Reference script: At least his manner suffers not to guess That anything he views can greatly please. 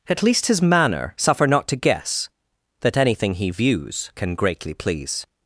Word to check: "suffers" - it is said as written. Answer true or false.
false